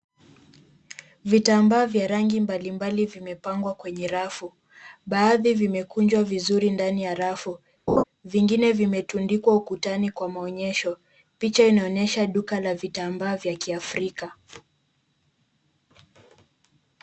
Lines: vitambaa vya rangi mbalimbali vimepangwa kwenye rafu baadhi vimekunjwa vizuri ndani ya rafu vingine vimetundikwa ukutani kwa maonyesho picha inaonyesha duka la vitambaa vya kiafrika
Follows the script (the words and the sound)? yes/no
no